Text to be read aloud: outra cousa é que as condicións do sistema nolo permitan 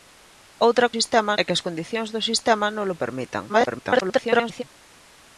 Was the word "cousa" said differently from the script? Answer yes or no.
yes